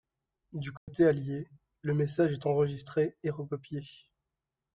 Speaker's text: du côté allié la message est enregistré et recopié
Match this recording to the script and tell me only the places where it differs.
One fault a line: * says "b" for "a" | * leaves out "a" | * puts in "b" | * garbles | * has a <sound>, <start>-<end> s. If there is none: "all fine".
* has a dropout, 0.8-0.9 s
* says "le" for "la"